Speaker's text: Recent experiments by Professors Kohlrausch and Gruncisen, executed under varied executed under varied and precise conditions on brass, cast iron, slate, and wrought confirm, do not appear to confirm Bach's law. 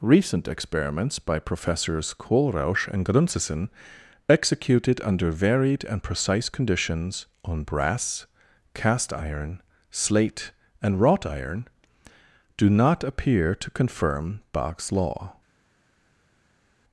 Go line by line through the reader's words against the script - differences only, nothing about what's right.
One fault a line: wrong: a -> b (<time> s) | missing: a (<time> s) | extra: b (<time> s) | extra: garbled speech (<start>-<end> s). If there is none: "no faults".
missing: executed under varied (5.8 s)
wrong: confirm -> iron (11.3 s)